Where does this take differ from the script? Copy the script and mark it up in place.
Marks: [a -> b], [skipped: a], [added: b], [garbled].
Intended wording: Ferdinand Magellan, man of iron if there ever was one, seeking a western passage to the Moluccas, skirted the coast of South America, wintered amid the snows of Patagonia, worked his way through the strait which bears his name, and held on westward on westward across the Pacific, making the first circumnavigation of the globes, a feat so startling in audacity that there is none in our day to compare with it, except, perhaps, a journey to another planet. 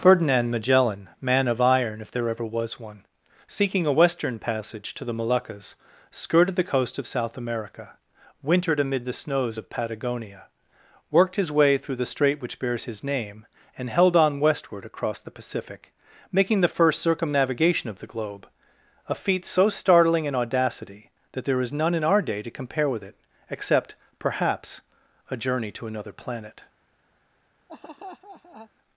Ferdinand Magellan, man of iron if there ever was one, seeking a western passage to the Moluccas, skirted the coast of South America, wintered amid the snows of Patagonia, worked his way through the strait which bears his name, and held on westward [skipped: on westward] across the Pacific, making the first circumnavigation of the [globes, -> globe] a feat so startling in audacity that there is none in our day to compare with it, except, perhaps, a journey to another planet.